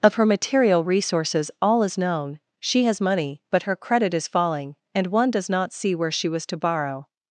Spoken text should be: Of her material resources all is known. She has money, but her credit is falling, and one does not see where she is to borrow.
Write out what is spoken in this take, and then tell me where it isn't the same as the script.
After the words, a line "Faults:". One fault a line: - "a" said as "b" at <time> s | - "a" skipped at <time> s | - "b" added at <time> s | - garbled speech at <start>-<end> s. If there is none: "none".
Of her material resources all is known. She has money, but her credit is falling, and one does not see where she was to borrow.
Faults:
- "is" said as "was" at 6.3 s